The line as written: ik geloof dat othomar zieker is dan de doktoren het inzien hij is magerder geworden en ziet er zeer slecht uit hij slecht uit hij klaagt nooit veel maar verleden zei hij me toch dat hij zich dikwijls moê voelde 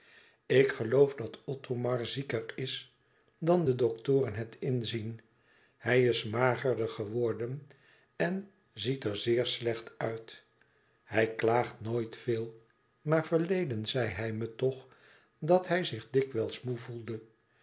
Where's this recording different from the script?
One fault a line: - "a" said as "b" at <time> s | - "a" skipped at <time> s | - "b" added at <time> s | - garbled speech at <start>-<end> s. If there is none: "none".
- "slecht uit hij" skipped at 11.3 s